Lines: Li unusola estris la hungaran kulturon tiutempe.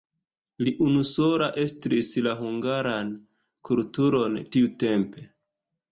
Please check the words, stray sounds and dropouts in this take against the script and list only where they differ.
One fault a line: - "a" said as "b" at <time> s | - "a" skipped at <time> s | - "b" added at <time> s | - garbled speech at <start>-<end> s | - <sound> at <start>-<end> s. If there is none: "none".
none